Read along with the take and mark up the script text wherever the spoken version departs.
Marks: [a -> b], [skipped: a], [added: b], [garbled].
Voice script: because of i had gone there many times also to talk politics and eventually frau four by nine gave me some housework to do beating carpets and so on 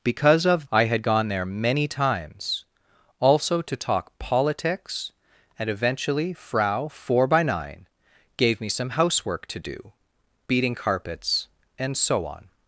because of i had gone there many times also to talk politics and eventually frau four by nine gave me some housework to do beating carpets and so on